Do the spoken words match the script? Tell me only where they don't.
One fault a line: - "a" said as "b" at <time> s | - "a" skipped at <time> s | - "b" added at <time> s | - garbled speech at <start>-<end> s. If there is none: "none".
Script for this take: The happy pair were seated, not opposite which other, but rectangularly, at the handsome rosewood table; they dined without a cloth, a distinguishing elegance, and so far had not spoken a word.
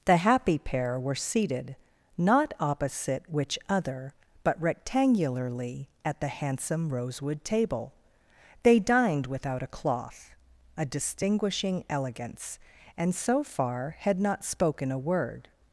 none